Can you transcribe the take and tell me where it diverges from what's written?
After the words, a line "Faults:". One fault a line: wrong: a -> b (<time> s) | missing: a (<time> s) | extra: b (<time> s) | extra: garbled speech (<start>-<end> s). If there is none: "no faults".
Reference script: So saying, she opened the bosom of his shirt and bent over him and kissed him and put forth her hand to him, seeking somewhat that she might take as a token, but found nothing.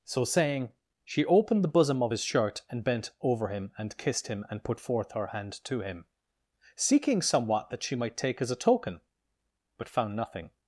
So saying, she opened the bosom of his shirt and bent over him and kissed him and put forth her hand to him, seeking somewhat that she might take as a token, but found nothing.
Faults:
no faults